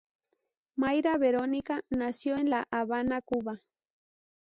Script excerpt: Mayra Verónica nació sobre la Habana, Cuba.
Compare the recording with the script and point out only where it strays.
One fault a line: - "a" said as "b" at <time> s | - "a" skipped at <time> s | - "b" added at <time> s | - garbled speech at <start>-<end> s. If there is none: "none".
- "sobre" said as "en" at 2.4 s